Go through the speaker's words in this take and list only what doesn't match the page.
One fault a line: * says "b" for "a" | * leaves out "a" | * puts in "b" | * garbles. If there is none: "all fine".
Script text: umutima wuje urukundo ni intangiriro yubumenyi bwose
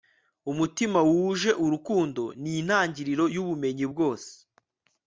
all fine